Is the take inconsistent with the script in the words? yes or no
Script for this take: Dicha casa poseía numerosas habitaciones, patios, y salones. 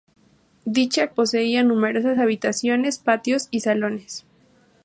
yes